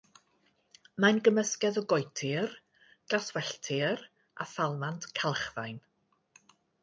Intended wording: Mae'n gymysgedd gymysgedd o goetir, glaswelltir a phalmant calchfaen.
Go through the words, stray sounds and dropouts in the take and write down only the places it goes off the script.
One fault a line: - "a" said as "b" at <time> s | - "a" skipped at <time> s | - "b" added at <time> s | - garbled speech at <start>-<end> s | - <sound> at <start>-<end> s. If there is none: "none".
- "gymysgedd" skipped at 1.8 s